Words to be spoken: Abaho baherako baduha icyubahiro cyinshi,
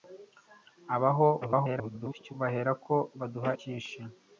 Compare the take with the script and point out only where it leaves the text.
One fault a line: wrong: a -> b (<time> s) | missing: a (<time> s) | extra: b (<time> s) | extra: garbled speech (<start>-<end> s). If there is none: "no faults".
extra: garbled speech (1.4-2.3 s)
missing: icyubahiro (3.5 s)